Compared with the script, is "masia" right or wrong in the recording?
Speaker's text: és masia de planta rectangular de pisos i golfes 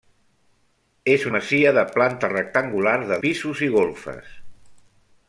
right